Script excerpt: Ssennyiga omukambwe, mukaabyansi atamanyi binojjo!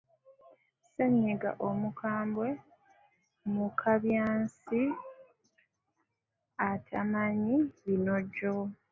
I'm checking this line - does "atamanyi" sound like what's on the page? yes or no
yes